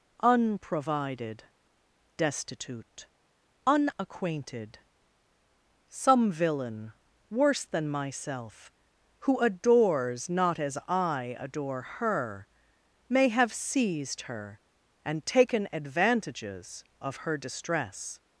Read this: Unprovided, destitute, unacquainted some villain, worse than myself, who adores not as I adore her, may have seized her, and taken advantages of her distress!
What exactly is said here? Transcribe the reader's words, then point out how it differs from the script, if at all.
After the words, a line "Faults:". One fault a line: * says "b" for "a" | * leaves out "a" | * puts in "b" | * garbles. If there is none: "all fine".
Unprovided, destitute, unacquainted some villain, worse than myself, who adores not as I adore her, may have seized her, and taken advantages of her distress!
Faults:
all fine